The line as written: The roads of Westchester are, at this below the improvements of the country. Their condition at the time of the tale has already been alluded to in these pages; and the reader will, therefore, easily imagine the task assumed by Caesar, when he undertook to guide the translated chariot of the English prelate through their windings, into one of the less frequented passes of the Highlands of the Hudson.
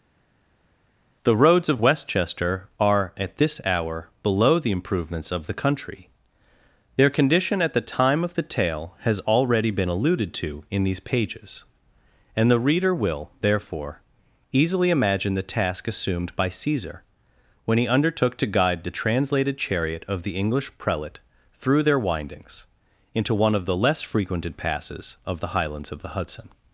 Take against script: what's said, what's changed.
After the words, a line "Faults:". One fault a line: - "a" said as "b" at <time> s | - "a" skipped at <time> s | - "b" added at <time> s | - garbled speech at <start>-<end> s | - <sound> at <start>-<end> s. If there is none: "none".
The roads of Westchester are, at this hour, below the improvements of the country. Their condition at the time of the tale has already been alluded to in these pages; and the reader will, therefore, easily imagine the task assumed by Caesar, when he undertook to guide the translated chariot of the English prelate through their windings, into one of the less frequented passes of the Highlands of the Hudson.
Faults:
- "hour" added at 3.6 s